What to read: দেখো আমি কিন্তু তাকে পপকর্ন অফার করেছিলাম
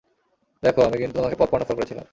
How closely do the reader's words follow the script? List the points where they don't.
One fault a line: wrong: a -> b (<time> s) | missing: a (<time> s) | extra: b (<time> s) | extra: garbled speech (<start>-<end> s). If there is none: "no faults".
wrong: তাকে -> তোমাকে (1.2 s)